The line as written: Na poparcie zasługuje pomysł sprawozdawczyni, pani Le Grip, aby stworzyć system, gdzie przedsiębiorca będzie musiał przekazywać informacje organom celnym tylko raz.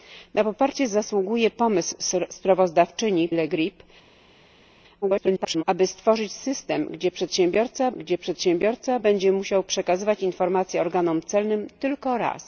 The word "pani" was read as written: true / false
false